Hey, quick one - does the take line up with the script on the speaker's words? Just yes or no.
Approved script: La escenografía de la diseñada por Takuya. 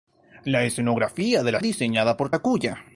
yes